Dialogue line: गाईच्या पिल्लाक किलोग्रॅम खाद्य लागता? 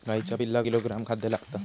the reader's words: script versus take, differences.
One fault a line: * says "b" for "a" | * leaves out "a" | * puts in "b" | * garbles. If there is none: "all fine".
all fine